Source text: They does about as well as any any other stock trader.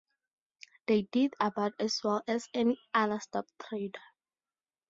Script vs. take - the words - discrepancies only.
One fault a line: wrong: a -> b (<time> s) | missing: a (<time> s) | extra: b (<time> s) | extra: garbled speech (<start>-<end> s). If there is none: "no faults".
wrong: does -> did (1.0 s)
missing: any (2.8 s)